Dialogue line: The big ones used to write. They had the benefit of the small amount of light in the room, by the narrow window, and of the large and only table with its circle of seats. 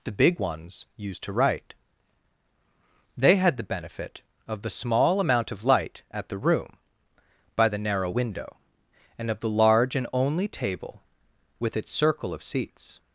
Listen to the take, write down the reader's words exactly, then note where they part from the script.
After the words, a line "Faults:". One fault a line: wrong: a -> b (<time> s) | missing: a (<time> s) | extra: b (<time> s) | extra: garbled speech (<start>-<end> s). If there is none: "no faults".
The big ones used to write. They had the benefit of the small amount of light at the room, by the narrow window, and of the large and only table with its circle of seats.
Faults:
wrong: in -> at (6.1 s)